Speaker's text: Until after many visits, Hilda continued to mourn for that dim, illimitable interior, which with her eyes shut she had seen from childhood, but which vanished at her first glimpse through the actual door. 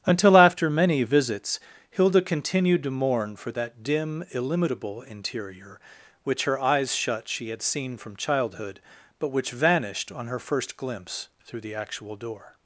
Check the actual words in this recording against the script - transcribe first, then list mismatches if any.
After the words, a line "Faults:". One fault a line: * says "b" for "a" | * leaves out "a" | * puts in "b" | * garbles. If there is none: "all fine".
Until after many visits, Hilda continued to mourn for that dim, illimitable interior, which her eyes shut she had seen from childhood, but which vanished on her first glimpse through the actual door.
Faults:
* leaves out "with"
* says "on" for "at"